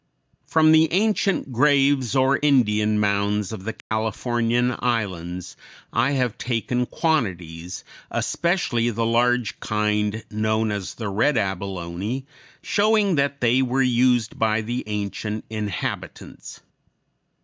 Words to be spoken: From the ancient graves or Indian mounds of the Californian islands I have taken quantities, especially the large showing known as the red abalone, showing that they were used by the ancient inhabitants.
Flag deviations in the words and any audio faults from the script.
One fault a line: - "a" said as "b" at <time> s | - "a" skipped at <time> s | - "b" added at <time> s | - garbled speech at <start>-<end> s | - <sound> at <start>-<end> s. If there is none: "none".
- dropout at 3.8-3.9 s
- "showing" said as "kind" at 9.6 s